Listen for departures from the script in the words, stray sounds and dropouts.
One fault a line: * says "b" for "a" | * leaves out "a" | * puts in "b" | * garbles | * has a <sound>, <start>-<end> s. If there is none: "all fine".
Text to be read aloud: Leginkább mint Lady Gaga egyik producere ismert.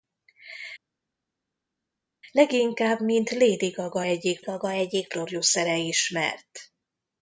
* puts in "Gaga egyik"